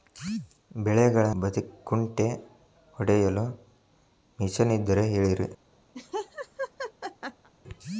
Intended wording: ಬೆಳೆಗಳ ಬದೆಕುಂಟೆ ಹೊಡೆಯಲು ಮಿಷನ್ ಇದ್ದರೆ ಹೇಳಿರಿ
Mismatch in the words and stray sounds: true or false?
true